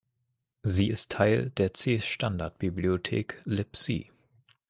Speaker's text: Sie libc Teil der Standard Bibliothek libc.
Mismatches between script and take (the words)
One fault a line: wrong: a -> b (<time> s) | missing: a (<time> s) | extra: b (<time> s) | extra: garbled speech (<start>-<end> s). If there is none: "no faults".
wrong: libc -> ist (0.9 s)
extra: C (1.7 s)